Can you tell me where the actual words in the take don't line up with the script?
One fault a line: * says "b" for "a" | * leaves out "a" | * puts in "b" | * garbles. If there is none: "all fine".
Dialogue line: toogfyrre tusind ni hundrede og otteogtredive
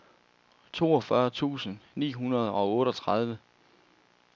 all fine